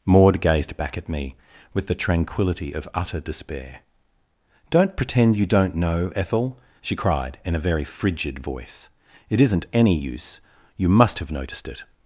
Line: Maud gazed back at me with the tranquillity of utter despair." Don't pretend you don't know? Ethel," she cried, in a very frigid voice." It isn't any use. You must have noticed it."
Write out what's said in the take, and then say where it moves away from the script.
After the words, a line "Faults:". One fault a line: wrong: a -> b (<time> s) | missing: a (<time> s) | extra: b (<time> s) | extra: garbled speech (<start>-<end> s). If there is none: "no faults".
Maud gazed back at me with the tranquillity of utter despair." Don't pretend you don't know? Ethel," she cried, in a very frigid voice." It isn't any use. You must have noticed it."
Faults:
no faults